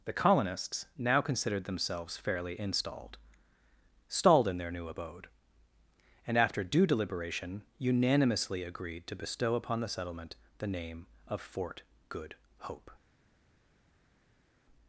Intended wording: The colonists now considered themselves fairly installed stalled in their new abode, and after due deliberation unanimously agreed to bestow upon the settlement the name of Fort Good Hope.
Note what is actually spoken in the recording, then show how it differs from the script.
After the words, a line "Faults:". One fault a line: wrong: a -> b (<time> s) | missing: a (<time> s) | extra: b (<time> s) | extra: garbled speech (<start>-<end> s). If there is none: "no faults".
The colonists now considered themselves fairly installed stalled in their new abode, and after due deliberation unanimously agreed to bestow upon the settlement the name of Fort Good Hope.
Faults:
no faults